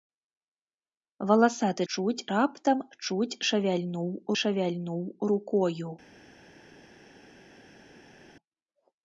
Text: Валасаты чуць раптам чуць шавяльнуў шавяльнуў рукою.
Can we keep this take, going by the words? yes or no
yes